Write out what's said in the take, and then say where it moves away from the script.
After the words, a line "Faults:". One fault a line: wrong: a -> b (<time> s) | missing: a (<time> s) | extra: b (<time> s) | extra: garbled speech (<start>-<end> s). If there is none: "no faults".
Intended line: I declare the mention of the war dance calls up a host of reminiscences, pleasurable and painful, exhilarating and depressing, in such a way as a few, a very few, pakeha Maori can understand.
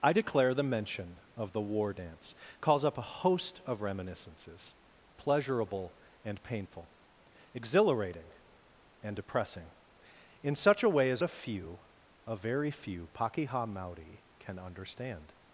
I declare the mention of the war dance calls up a host of reminiscences, pleasurable and painful, exhilarating and depressing, in such a way as a few, a very few, pakeha Maori can understand.
Faults:
no faults